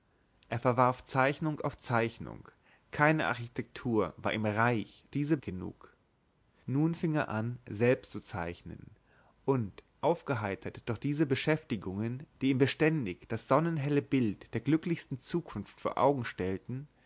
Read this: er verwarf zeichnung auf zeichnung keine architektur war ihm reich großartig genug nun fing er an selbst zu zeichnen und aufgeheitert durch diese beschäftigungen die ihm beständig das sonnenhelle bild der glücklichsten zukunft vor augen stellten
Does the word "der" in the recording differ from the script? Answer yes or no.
no